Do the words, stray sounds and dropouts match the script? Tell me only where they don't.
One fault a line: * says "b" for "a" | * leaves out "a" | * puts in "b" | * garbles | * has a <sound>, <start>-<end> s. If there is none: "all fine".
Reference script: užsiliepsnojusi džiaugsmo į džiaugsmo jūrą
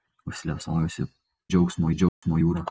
* has a dropout, 2.1-2.2 s